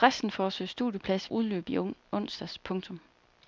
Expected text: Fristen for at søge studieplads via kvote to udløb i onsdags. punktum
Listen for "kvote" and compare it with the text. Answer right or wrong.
wrong